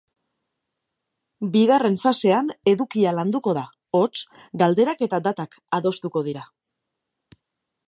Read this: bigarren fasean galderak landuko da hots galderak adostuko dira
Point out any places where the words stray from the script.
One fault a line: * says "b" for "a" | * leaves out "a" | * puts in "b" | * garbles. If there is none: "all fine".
* says "edukia" for "galderak"
* puts in "eta datak"